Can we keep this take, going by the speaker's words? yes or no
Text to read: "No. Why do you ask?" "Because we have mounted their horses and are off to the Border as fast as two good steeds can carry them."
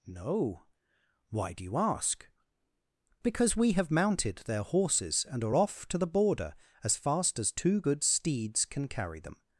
yes